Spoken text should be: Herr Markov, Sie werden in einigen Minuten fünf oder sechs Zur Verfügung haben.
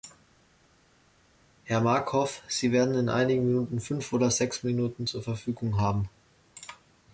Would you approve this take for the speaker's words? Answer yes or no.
no